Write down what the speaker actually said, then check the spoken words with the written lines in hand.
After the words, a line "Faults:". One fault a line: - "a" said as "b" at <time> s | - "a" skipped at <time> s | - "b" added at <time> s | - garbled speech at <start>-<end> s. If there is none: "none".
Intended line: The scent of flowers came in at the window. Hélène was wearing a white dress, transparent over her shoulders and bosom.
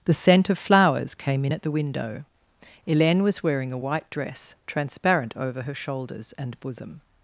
The scent of flowers came in at the window. Hélène was wearing a white dress, transparent over her shoulders and bosom.
Faults:
none